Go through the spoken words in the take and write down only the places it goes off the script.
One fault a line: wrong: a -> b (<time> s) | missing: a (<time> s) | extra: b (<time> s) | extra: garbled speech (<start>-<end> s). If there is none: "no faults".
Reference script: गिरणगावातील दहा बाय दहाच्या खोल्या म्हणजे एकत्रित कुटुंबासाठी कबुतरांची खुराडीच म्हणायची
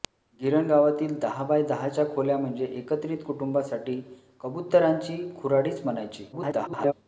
extra: garbled speech (6.3-6.9 s)